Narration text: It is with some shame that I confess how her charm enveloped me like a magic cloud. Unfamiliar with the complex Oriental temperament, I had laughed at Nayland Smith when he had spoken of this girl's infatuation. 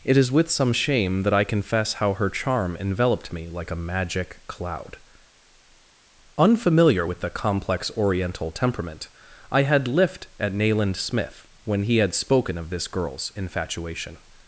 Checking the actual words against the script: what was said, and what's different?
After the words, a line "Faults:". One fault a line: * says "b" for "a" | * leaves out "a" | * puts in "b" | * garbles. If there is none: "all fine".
It is with some shame that I confess how her charm enveloped me like a magic cloud. Unfamiliar with the complex Oriental temperament, I had lift at Nayland Smith when he had spoken of this girl's infatuation.
Faults:
* says "lift" for "laughed"